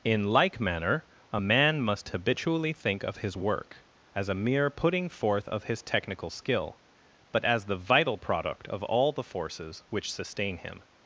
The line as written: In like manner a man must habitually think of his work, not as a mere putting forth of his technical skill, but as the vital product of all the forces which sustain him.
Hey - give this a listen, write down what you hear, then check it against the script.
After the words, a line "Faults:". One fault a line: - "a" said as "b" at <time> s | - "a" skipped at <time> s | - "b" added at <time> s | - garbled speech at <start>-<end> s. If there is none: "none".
In like manner a man must habitually think of his work, as a mere putting forth of his technical skill, but as the vital product of all the forces which sustain him.
Faults:
- "not" skipped at 3.8 s